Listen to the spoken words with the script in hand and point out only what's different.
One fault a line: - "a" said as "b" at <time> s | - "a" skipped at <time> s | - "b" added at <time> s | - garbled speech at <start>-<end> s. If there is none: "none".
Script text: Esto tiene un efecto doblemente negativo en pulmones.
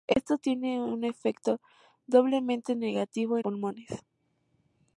none